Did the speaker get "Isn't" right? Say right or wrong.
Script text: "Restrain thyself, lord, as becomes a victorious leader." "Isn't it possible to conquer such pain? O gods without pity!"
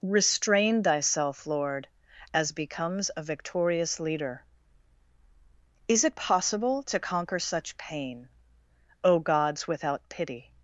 wrong